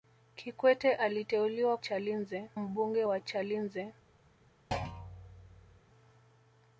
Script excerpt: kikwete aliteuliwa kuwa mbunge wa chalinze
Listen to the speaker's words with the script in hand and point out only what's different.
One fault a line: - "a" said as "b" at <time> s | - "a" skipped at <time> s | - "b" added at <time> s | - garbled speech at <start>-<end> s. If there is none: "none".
- "kuwa" said as "chalinze" at 1.8 s